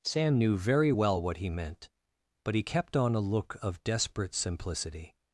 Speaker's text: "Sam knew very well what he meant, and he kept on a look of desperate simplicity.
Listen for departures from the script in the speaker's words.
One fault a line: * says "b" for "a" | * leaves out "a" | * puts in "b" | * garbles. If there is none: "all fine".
* says "but" for "and"